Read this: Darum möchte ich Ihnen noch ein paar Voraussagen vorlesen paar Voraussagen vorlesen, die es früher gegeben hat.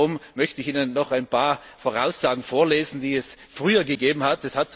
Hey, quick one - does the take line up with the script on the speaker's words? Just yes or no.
no